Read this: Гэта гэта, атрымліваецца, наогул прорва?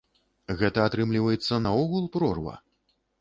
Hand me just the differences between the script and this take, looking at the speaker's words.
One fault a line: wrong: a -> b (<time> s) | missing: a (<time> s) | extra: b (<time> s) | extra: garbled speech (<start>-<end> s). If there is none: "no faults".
missing: гэта (0.8 s)